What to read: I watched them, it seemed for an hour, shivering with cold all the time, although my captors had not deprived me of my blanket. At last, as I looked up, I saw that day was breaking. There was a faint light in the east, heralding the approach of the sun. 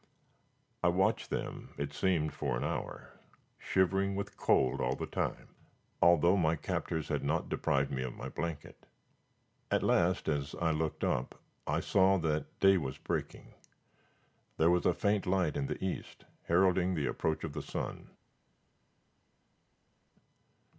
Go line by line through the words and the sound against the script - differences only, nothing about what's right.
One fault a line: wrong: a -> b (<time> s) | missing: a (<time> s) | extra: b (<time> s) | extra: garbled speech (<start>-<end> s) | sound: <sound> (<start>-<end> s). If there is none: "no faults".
no faults